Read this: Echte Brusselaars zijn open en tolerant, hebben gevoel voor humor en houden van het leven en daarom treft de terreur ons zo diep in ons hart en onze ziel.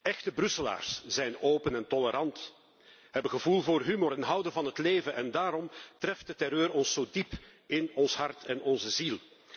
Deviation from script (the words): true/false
false